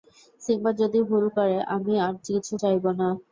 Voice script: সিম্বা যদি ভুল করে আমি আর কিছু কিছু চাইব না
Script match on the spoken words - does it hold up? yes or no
no